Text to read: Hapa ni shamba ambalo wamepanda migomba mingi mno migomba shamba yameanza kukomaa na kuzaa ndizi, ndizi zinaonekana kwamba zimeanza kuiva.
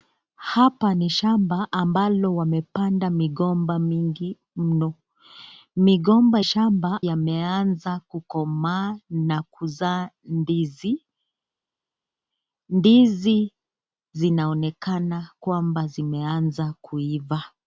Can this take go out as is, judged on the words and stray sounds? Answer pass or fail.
pass